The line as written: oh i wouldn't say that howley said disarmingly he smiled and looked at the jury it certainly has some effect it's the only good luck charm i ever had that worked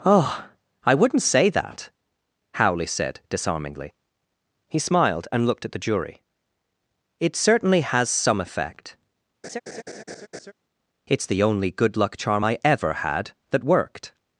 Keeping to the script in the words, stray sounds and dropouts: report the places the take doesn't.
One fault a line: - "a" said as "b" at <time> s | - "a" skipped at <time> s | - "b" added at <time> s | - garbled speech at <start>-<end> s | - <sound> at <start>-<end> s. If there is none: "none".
- laugh at 9.4-10.5 s